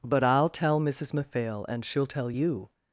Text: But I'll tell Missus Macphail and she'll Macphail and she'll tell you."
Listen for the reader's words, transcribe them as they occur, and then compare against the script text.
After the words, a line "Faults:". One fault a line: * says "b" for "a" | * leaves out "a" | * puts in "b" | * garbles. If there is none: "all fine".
But I'll tell Missus Macphail and she'll tell you."
Faults:
* leaves out "Macphail and she'll"